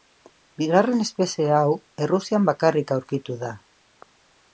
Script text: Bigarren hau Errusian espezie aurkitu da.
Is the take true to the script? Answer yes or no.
no